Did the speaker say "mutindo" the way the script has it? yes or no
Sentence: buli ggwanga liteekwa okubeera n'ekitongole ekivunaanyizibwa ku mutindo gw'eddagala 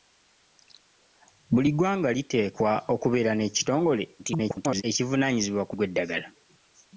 no